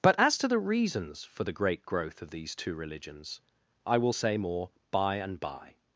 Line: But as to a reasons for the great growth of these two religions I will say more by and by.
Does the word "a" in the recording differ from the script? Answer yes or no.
yes